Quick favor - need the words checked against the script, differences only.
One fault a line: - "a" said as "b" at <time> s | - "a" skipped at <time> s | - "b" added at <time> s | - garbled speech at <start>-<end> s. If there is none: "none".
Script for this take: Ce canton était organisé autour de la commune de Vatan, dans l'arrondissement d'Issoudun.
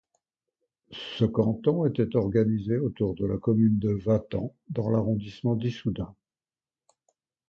none